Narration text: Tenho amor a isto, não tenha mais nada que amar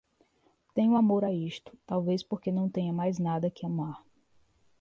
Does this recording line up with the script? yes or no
no